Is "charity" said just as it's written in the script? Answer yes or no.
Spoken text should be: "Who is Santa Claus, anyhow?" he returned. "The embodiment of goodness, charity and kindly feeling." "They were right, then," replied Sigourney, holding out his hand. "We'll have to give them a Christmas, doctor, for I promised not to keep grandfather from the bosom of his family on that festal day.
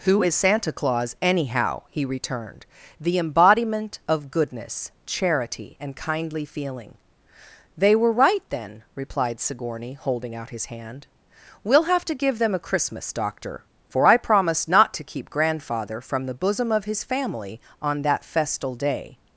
yes